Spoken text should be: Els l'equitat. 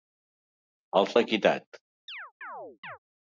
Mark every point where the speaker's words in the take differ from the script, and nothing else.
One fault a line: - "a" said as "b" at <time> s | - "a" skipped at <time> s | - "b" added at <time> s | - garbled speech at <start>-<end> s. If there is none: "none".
none